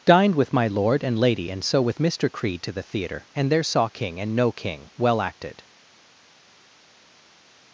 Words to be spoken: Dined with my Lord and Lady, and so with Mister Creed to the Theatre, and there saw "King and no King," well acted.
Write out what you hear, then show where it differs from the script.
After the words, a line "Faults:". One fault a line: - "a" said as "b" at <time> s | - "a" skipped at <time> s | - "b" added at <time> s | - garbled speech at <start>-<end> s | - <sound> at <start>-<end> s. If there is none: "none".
Dined with my Lord and Lady, and so with Mister Creed to the Theatre, and there saw "King and no King," well acted.
Faults:
none